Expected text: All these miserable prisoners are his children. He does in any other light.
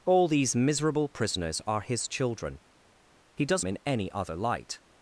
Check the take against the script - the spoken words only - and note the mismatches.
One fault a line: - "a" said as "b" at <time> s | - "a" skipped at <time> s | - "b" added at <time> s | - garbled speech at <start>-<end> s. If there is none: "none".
none